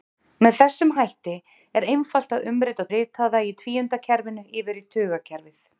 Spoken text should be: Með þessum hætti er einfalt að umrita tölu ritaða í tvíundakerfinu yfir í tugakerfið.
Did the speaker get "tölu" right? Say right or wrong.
wrong